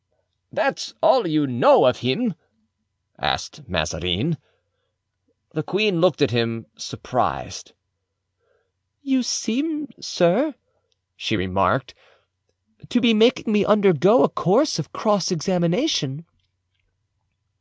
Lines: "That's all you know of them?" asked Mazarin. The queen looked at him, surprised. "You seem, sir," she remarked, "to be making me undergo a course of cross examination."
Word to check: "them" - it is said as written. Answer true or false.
false